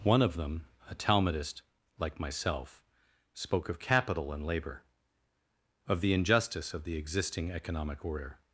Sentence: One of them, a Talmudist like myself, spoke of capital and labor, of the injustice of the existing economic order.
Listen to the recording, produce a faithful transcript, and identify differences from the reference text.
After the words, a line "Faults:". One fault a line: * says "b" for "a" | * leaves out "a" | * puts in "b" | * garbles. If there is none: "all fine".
One of them, a Talmudist like myself, spoke of capital and labor, of the injustice of the existing economic order.
Faults:
all fine